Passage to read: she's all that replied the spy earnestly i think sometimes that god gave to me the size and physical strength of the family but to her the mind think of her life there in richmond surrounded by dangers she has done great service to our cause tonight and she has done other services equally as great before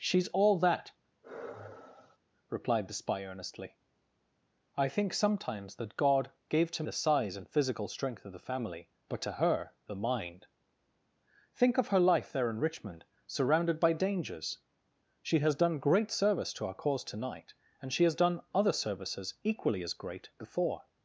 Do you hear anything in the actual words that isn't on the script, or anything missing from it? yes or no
yes